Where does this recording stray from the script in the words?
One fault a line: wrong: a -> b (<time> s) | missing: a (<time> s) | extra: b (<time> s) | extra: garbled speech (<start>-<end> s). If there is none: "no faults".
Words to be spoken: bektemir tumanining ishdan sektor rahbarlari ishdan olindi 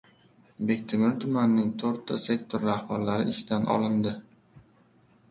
wrong: ishdan -> to‘rtta (1.8 s)